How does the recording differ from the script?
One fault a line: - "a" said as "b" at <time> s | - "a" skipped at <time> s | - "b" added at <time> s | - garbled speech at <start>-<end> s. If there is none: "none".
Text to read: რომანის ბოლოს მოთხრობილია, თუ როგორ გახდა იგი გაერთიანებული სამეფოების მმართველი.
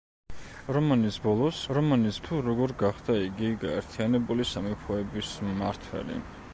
- "მოთხრობილია" said as "რომანის" at 1.8 s